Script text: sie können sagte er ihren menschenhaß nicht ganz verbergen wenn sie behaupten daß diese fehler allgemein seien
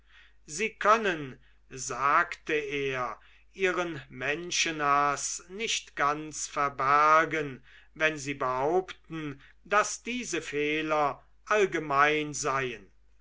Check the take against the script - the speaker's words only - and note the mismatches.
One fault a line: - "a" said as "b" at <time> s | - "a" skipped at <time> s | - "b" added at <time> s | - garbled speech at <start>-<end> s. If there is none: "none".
none